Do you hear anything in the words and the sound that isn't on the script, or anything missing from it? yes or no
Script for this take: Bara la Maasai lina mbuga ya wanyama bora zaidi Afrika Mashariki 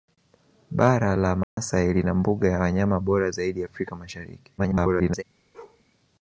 yes